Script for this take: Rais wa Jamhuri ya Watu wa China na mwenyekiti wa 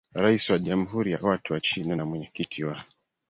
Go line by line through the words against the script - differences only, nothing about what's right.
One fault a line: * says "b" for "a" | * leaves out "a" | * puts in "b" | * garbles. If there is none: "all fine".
all fine